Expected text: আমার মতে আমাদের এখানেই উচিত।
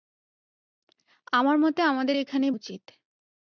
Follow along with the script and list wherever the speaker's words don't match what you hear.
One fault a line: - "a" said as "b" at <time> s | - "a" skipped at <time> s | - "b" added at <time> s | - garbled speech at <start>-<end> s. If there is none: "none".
none